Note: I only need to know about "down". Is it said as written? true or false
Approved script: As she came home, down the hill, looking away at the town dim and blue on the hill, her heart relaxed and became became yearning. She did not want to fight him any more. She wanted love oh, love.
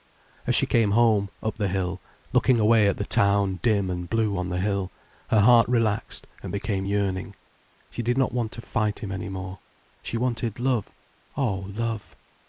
false